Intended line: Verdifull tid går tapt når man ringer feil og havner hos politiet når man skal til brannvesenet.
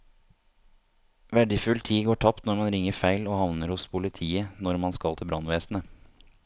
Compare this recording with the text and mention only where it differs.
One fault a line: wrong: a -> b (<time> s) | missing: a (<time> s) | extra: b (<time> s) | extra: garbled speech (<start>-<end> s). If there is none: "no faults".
no faults